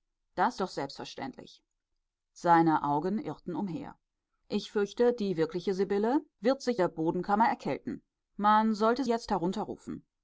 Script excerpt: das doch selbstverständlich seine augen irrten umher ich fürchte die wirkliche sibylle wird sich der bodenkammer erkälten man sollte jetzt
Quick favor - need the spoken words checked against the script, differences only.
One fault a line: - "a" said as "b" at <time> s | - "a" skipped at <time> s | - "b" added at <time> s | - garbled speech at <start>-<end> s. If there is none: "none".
none